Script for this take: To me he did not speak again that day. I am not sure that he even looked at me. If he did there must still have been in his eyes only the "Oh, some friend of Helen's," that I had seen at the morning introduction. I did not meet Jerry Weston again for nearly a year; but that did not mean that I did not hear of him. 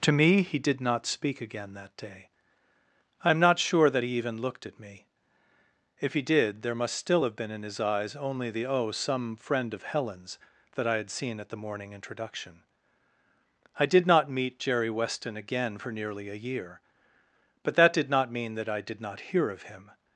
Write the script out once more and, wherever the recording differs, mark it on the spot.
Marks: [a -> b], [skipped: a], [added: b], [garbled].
To me he did not speak again that day. I am not sure that he even looked at me. If he did there must still have been in his eyes only the "Oh, some friend of Helen's," that I had seen at the morning introduction. I did not meet Jerry Weston again for nearly a year; but that did not mean that I did not hear of him.